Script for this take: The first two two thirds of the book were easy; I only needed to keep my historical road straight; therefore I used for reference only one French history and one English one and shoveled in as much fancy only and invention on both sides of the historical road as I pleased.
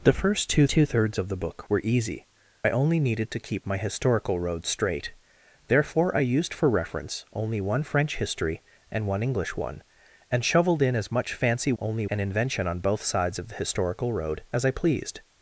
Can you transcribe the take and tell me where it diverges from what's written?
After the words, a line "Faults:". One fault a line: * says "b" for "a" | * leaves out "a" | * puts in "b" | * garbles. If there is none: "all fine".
The first two two thirds of the book were easy; I only needed to keep my historical road straight; therefore I used for reference only one French history and one English one and shoveled in as much fancy only and invention on both sides of the historical road as I pleased.
Faults:
all fine